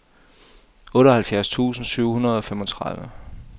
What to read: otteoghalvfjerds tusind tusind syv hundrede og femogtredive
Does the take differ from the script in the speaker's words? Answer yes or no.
yes